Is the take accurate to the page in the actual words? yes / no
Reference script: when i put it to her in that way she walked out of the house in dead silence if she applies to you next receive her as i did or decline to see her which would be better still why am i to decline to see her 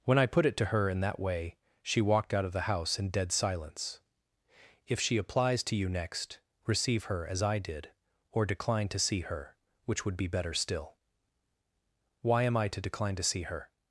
yes